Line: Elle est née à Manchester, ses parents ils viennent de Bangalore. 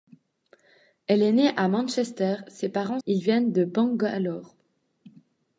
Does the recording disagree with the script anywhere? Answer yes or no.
no